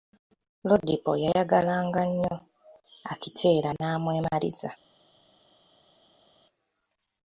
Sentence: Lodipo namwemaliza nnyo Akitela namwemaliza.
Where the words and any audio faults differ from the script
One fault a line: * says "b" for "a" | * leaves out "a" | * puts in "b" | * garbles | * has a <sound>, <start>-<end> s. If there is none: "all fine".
* says "yayagalanga" for "namwemaliza"